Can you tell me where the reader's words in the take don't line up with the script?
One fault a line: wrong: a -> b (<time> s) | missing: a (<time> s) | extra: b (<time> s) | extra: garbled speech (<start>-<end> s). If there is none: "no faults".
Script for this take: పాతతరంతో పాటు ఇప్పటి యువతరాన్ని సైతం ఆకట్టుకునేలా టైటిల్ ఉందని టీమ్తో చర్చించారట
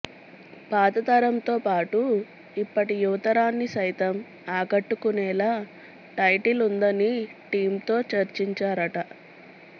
no faults